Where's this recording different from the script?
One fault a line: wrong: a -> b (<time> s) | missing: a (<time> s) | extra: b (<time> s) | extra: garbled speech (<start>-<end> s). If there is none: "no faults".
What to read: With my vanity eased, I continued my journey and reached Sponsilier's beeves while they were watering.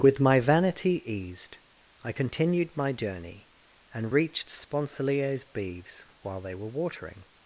no faults